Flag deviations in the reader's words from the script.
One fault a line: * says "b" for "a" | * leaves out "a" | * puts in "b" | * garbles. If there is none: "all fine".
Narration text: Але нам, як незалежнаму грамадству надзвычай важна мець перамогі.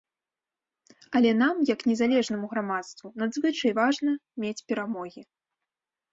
all fine